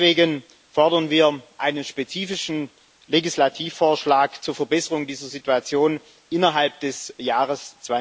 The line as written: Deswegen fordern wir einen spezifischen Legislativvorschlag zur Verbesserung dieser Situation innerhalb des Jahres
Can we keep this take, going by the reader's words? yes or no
yes